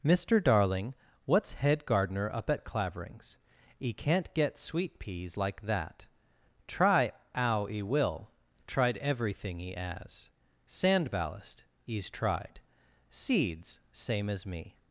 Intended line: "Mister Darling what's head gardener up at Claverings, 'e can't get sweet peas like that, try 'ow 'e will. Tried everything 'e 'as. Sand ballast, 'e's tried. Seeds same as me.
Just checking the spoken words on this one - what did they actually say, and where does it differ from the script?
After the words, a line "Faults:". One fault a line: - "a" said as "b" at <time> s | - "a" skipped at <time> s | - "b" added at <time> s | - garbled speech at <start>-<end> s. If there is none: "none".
"Mister Darling what's head gardener up at Claverings, 'e can't get sweet peas like that, try 'ow 'e will. Tried everything 'e 'as. Sand ballast, 'e's tried. Seeds same as me.
Faults:
none